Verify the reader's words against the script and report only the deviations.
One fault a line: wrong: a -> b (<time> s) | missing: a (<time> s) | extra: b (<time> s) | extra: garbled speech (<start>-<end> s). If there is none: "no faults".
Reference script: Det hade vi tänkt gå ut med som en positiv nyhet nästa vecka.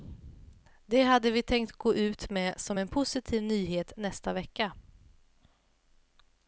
no faults